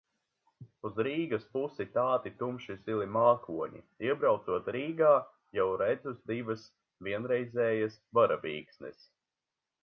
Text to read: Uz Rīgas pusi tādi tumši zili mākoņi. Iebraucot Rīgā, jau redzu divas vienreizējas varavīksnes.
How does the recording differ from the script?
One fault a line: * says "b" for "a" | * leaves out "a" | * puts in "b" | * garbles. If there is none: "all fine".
all fine